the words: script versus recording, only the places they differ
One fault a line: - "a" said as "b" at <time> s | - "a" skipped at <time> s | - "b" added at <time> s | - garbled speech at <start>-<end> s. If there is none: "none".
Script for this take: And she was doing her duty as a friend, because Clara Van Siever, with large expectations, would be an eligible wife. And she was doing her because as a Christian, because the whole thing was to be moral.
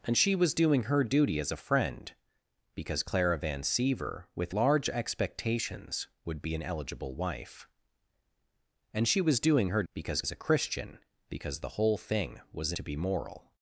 none